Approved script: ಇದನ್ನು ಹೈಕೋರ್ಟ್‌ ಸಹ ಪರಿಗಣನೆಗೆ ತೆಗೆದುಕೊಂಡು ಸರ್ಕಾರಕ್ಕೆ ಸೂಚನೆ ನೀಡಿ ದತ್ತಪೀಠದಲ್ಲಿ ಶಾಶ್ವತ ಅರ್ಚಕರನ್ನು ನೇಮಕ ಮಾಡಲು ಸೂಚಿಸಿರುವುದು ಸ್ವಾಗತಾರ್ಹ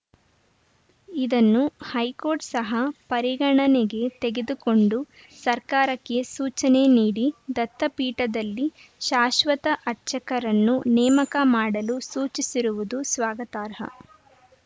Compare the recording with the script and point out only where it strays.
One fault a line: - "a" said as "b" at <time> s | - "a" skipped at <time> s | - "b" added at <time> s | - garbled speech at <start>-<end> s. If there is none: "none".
none